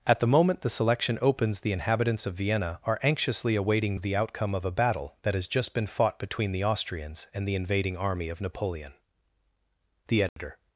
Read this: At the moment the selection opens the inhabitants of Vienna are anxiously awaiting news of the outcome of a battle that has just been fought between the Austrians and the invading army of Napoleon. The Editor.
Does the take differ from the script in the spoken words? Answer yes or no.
yes